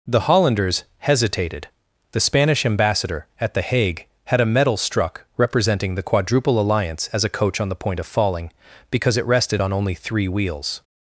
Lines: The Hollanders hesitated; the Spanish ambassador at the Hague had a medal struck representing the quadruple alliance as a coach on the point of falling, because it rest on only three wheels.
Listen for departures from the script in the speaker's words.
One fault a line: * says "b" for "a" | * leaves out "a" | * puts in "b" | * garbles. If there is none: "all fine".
* says "rested" for "rest"